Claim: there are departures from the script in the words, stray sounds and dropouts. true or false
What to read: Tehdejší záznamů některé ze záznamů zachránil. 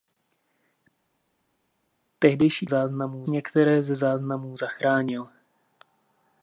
false